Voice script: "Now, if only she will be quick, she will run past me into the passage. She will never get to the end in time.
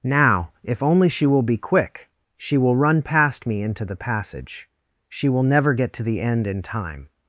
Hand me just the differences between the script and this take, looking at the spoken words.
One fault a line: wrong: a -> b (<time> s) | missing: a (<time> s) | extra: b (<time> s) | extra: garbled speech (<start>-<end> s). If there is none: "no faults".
no faults